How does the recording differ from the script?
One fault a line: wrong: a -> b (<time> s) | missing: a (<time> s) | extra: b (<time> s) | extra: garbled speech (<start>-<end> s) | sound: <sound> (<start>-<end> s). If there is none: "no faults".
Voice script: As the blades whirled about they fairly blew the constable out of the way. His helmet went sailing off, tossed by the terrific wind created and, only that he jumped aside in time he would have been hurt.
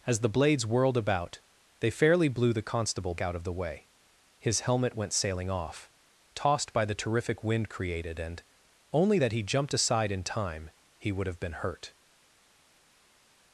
no faults